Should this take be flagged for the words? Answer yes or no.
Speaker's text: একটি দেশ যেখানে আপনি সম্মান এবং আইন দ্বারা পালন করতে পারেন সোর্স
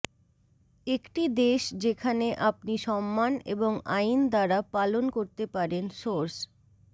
no